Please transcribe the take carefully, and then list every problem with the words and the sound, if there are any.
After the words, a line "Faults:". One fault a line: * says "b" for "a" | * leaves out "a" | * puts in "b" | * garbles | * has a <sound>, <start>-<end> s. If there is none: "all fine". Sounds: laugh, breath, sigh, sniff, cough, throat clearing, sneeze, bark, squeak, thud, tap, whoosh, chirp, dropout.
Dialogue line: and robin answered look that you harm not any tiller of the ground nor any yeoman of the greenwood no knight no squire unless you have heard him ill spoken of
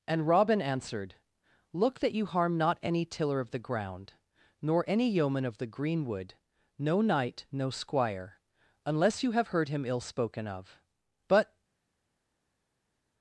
and robin answered look that you harm not any tiller of the ground nor any yeoman of the greenwood no knight no squire unless you have heard him ill spoken of but
Faults:
* puts in "but"